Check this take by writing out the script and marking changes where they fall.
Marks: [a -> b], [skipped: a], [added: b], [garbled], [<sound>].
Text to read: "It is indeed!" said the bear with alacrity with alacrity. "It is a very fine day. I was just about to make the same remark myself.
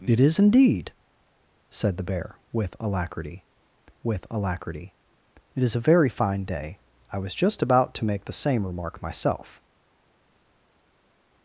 "It is indeed!" said the bear with alacrity with alacrity. "It is a very fine day. I was just about to make the same remark myself.